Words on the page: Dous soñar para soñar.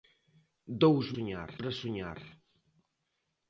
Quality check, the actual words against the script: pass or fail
pass